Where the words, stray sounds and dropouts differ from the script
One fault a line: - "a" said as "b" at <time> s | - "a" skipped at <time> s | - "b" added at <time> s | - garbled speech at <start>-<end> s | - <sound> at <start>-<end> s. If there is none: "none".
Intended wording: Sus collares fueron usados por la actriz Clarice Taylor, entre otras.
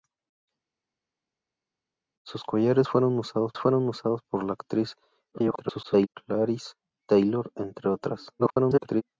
- "fueron usados" added at 3.6 s
- garbled speech at 5.3-6.1 s
- garbled speech at 8.4-9.0 s